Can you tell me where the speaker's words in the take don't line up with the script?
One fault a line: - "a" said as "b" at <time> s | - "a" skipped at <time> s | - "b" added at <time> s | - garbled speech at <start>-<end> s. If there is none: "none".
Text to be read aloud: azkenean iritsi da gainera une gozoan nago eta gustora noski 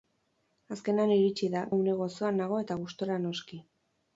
- "gainera" skipped at 1.6 s